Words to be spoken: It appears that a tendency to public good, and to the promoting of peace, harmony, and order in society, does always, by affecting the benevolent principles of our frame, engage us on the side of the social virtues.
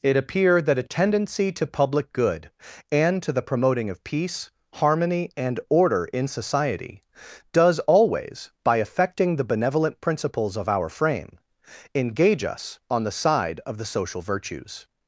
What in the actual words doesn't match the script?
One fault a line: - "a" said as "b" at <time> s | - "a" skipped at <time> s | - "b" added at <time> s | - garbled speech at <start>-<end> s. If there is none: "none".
- "appears" said as "appear" at 0.2 s